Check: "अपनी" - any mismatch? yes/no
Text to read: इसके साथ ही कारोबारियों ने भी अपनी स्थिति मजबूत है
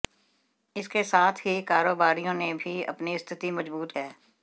no